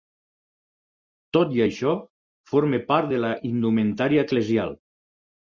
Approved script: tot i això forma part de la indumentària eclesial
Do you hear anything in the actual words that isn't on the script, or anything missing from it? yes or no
no